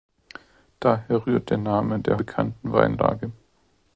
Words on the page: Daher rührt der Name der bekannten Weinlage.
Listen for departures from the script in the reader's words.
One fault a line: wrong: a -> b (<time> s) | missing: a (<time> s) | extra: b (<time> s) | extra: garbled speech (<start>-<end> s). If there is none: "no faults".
no faults